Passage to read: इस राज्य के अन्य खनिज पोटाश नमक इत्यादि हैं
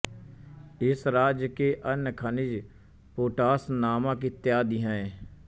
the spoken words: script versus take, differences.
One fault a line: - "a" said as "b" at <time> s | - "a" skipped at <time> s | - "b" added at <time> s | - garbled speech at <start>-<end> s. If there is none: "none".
none